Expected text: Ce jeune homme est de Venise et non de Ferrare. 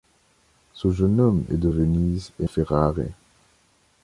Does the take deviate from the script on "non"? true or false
true